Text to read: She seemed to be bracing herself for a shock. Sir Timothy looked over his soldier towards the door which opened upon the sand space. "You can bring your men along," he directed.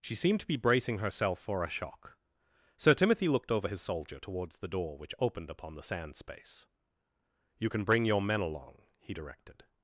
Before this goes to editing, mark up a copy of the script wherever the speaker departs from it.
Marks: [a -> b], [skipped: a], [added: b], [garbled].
She seemed to be bracing herself for a shock. Sir Timothy looked over his soldier towards the door which opened upon the sand space. "You can bring your men along," he directed.